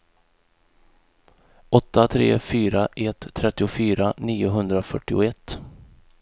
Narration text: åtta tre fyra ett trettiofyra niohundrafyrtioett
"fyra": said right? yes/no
yes